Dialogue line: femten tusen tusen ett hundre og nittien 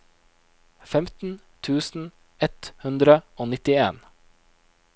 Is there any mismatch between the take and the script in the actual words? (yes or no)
yes